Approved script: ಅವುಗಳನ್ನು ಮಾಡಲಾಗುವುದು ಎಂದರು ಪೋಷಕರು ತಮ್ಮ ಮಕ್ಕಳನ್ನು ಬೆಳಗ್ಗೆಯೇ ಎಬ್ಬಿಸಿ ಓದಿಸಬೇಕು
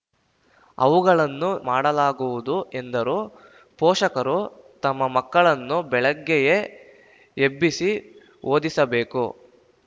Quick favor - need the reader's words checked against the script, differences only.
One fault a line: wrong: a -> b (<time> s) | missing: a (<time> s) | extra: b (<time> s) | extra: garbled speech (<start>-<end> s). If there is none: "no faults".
no faults